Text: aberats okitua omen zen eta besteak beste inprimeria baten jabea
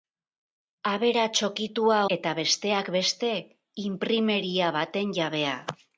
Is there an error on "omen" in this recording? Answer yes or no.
yes